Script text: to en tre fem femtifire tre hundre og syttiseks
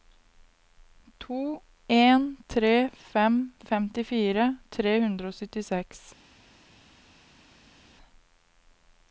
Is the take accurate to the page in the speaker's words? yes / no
yes